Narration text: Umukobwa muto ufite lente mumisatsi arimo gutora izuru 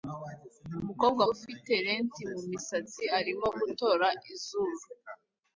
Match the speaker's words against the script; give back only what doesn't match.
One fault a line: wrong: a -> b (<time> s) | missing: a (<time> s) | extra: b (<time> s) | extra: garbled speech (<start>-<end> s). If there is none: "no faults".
missing: muto (1.2 s)